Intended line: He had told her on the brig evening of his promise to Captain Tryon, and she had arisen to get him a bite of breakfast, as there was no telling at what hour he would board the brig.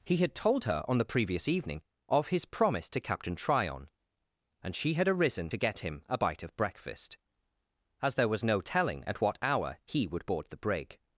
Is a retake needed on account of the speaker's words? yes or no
yes